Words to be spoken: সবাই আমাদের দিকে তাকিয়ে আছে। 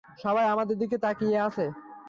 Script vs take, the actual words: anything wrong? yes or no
no